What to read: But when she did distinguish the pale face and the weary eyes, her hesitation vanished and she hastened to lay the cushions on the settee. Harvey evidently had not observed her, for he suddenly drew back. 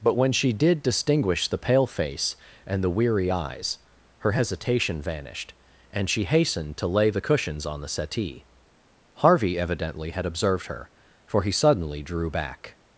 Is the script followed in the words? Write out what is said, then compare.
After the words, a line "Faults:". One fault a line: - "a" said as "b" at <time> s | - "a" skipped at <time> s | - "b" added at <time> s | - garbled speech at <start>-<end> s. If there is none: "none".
But when she did distinguish the pale face and the weary eyes, her hesitation vanished and she hastened to lay the cushions on the settee. Harvey evidently had observed her, for he suddenly drew back.
Faults:
- "not" skipped at 10.2 s